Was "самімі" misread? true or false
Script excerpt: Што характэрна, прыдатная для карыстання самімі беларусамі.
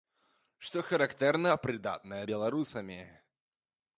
true